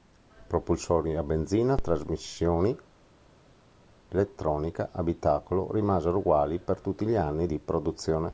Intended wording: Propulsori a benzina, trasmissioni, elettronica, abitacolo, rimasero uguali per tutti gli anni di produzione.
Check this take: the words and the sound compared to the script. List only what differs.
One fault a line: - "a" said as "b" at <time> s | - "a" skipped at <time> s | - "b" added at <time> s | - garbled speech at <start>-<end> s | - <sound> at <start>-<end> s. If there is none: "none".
none